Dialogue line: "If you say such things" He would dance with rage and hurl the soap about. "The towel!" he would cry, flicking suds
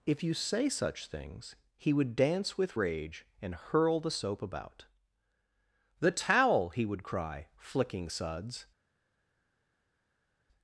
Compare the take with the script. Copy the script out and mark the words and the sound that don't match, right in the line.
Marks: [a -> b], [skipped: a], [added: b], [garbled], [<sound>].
"If you say such things" He would dance with rage and hurl the soap about. "The towel!" he would cry, flicking suds